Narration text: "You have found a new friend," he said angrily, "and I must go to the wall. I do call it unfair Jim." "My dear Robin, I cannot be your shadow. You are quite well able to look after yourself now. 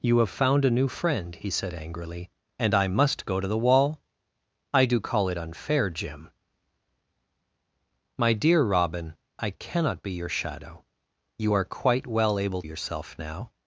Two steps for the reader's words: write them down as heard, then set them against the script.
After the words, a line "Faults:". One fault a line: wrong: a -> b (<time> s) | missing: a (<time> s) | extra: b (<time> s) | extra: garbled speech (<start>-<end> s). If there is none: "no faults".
"You have found a new friend," he said angrily, "and I must go to the wall. I do call it unfair Jim." "My dear Robin, I cannot be your shadow. You are quite well able yourself now.
Faults:
missing: to look after (12.6 s)